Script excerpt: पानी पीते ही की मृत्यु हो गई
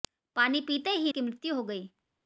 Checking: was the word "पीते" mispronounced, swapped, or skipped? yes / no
no